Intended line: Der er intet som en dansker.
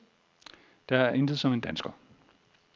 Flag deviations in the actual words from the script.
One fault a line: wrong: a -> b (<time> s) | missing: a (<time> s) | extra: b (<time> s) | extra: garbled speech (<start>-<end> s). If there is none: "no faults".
no faults